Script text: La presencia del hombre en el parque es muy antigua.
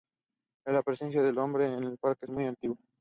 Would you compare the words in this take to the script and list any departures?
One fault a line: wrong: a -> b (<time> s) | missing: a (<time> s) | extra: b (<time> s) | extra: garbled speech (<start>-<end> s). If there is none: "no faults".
missing: es (2.2 s)